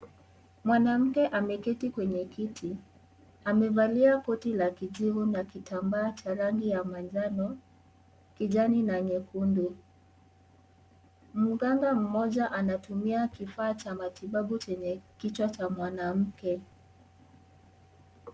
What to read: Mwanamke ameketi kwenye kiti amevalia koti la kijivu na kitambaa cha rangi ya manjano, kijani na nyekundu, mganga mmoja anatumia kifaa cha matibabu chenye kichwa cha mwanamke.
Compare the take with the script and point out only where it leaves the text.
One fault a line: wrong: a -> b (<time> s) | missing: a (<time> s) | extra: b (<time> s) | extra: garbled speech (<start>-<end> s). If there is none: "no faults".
no faults